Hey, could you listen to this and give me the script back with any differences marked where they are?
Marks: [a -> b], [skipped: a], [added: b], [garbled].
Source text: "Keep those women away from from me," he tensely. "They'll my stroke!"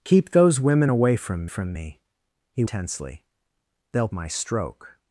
"Keep those women away from from me," he tensely. "They'll my stroke!"